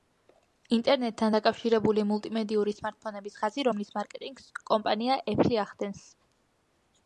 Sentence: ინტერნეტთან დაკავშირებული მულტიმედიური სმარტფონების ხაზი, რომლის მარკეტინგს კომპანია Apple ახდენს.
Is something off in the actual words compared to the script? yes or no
no